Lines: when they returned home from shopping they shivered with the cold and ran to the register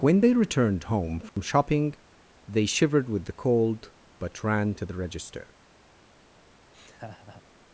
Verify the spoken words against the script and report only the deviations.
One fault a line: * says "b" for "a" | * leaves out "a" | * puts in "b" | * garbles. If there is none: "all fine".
* says "but" for "and"